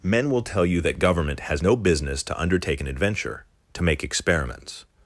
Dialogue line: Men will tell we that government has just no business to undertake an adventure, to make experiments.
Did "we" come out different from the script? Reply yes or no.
yes